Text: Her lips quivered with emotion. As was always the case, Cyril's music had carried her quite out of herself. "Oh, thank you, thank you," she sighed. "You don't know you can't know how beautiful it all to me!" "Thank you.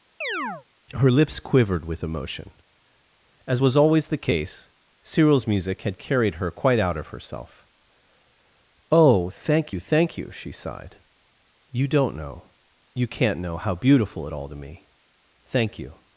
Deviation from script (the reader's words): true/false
false